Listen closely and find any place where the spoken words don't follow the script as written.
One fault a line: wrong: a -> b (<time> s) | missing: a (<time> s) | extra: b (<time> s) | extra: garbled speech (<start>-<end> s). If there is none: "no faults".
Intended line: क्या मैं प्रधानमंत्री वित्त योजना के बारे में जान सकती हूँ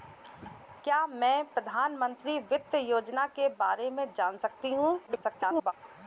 extra: garbled speech (5.1-5.7 s)